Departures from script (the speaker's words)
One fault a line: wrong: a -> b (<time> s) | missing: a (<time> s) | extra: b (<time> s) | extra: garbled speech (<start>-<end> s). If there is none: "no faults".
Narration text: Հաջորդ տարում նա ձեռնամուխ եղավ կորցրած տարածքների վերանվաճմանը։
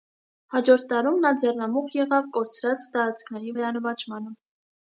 no faults